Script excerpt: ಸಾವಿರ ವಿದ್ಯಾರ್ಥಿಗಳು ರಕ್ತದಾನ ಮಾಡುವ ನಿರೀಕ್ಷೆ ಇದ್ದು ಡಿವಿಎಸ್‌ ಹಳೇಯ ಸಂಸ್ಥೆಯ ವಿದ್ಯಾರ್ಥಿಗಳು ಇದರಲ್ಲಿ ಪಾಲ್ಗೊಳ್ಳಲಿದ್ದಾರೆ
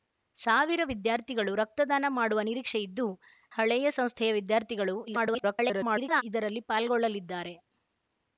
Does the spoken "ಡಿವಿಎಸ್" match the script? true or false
false